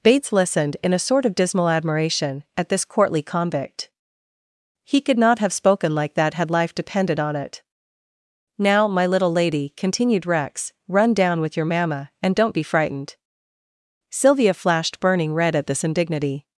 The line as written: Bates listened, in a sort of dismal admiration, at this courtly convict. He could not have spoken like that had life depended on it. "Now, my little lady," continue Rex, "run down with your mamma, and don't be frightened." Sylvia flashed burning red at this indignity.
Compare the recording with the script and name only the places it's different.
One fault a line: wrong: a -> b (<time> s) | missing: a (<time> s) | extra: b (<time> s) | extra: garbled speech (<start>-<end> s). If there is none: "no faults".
wrong: continue -> continued (9.8 s)